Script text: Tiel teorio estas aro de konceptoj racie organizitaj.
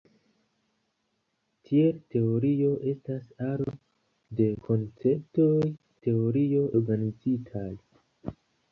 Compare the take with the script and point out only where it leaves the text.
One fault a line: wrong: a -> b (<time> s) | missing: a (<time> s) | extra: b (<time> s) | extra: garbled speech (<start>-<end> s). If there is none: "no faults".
wrong: racie -> teorio (6.1 s)